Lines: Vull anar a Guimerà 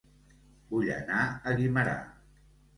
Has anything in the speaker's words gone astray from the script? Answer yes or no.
no